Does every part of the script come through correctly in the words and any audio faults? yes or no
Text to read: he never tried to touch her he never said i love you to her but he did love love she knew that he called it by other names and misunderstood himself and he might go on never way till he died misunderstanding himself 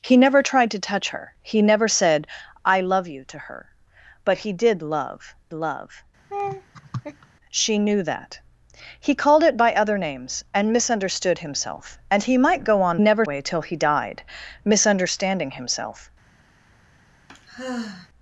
no